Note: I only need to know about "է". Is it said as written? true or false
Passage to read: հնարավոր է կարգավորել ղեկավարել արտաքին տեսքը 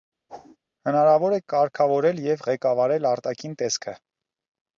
true